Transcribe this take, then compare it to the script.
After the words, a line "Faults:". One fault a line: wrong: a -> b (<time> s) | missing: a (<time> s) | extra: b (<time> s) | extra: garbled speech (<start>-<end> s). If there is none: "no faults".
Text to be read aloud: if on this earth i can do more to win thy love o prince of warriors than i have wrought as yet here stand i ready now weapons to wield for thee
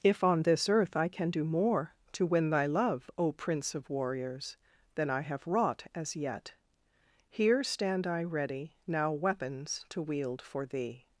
if on this earth i can do more to win thy love o prince of warriors than i have wrought as yet here stand i ready now weapons to wield for thee
Faults:
no faults